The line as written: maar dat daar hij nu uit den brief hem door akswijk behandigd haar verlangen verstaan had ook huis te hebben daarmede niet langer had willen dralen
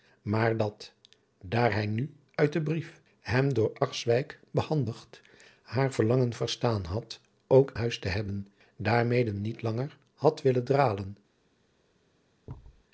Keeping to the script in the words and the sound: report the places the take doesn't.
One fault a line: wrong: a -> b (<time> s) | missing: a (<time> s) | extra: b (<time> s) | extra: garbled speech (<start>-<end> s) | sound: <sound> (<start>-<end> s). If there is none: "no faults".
sound: thud (12.5-12.8 s)